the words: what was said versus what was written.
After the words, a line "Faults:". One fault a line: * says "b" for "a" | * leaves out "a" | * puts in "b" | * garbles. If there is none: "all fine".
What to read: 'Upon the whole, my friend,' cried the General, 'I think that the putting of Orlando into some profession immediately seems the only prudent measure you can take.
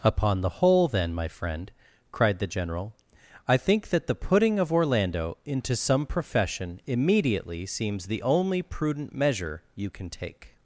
'Upon the whole, then, my friend,' cried the General, 'I think that the putting of Orlando into some profession immediately seems the only prudent measure you can take.
Faults:
* puts in "then"